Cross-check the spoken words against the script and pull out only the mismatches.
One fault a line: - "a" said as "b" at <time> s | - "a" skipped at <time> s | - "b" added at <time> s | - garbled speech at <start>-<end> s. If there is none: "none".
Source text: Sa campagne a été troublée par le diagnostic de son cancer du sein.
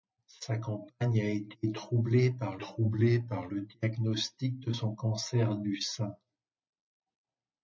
- "troublée par" added at 2.6 s